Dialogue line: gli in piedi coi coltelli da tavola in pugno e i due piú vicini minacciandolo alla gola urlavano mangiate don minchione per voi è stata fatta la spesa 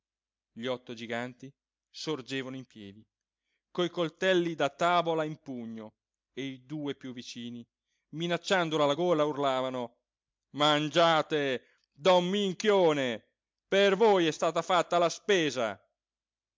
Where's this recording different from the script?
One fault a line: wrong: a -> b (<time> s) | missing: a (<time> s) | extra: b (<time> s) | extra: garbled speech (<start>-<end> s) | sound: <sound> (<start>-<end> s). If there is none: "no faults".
extra: otto giganti sorgevano (0.7 s)